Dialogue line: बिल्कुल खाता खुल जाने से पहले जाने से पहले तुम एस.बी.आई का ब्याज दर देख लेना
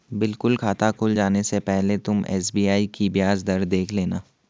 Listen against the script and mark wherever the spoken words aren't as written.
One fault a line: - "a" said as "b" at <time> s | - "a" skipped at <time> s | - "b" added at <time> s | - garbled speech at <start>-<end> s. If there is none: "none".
- "जाने से पहले" skipped at 2.0 s
- "का" said as "की" at 2.9 s